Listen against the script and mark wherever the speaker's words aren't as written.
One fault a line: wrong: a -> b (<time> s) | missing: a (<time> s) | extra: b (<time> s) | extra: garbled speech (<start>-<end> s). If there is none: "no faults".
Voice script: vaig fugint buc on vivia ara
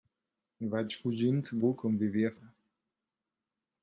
no faults